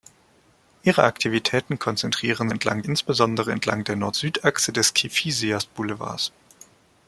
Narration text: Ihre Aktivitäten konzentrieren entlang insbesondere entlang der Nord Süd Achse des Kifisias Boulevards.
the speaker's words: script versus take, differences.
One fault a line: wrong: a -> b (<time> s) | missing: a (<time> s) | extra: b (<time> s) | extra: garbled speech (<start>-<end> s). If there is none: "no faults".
no faults